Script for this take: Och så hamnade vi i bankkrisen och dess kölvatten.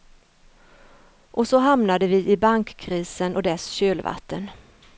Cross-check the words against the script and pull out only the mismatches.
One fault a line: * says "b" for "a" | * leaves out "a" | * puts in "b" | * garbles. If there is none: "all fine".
all fine